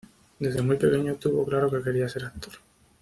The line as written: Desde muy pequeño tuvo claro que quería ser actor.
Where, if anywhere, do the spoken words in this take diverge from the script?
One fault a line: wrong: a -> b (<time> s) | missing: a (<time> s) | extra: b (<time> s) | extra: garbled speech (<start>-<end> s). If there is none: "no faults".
no faults